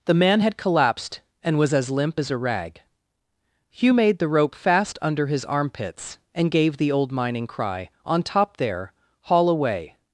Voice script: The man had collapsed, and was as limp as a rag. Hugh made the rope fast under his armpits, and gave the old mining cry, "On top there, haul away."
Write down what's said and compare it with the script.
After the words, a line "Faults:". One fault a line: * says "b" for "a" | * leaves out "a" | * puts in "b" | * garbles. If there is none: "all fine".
The man had collapsed, and was as limp as a rag. Hugh made the rope fast under his armpits, and gave the old mining cry, "On top there, haul away."
Faults:
all fine